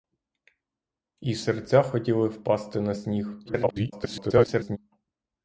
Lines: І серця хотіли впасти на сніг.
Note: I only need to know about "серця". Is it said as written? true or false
true